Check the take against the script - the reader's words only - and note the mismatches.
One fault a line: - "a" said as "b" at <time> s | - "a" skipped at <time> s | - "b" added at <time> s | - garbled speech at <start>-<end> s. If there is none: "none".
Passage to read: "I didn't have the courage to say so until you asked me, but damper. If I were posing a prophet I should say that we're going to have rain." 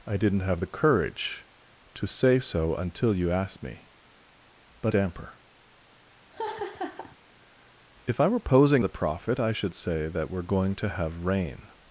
none